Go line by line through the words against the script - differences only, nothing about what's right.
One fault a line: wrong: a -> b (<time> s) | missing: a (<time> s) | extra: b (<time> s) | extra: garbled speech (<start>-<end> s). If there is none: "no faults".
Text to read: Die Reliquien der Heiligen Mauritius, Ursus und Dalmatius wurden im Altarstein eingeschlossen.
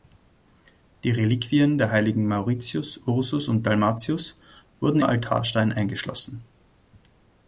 missing: im (5.0 s)